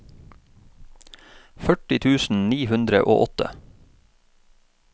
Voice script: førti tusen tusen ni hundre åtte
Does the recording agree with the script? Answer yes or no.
no